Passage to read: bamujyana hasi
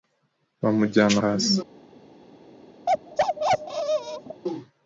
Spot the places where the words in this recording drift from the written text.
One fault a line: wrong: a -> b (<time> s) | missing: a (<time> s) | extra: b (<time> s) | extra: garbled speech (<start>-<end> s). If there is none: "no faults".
no faults